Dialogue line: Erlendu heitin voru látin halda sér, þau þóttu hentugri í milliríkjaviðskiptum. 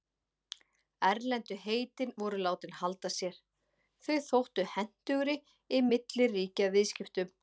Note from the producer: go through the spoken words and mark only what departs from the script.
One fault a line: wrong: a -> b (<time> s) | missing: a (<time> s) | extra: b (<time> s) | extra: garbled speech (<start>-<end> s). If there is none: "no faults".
no faults